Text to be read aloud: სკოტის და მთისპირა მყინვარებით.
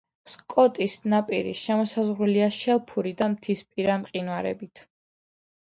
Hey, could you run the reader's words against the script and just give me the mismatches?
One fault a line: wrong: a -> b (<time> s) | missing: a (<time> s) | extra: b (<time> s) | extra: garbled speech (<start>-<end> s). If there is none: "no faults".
extra: ნაპირი შემოსაზღვრულია შელფური (1.1 s)